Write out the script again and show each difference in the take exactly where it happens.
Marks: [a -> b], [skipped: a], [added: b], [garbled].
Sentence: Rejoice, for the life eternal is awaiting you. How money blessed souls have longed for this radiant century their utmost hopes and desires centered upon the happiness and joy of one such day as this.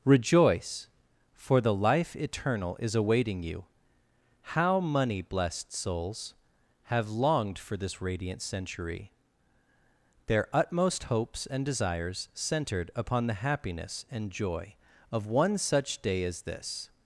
Rejoice, for the life eternal is awaiting you. How money blessed souls have longed for this radiant century their utmost hopes and desires centered upon the happiness and joy of one such day as this.